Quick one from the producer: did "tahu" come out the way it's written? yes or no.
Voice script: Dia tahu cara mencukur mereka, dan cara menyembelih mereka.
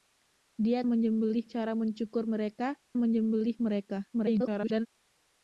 no